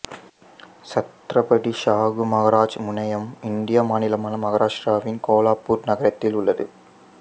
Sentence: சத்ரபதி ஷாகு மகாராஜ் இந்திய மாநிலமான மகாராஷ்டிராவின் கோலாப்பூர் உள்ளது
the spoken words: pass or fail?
fail